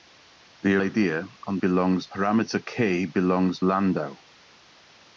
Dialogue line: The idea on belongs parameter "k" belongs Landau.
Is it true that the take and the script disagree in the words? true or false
false